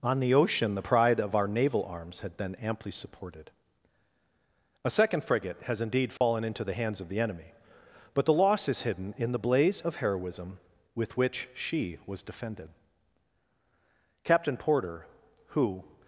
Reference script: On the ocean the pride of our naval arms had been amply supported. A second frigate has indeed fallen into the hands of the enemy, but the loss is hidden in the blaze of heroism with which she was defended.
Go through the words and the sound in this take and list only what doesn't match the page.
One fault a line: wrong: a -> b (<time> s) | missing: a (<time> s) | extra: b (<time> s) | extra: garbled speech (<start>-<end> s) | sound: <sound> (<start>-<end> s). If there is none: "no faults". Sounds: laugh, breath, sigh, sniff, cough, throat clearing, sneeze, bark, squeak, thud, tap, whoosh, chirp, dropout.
sound: dropout (6.2-6.2 s)
extra: Captain Porter who (14.2 s)